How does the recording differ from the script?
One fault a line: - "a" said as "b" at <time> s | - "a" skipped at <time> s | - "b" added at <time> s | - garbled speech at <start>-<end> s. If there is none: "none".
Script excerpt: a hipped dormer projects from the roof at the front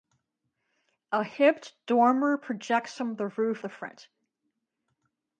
- "at" skipped at 3.6 s